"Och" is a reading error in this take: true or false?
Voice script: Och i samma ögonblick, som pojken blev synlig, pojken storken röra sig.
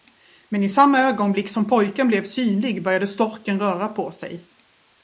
true